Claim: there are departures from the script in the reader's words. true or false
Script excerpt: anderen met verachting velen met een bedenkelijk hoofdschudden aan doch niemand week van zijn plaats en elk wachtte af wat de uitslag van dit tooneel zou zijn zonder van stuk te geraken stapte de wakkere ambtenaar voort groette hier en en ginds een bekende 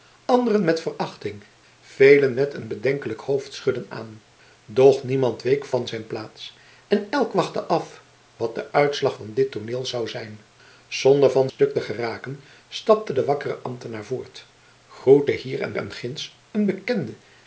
false